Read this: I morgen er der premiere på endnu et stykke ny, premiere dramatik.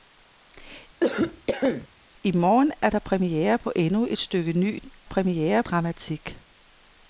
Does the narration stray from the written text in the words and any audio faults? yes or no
yes